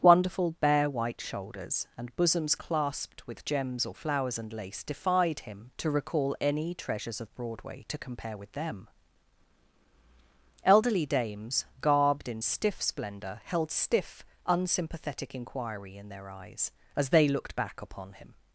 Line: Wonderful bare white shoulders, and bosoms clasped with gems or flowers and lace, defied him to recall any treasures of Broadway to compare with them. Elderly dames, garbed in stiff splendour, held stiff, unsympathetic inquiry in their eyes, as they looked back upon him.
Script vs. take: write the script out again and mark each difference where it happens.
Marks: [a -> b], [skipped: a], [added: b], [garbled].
Wonderful bare white shoulders, and bosoms clasped with gems or flowers and lace, defied him to recall any treasures of Broadway to compare with them. Elderly dames, garbed in stiff splendour, held stiff, unsympathetic inquiry in their eyes, as they looked back upon him.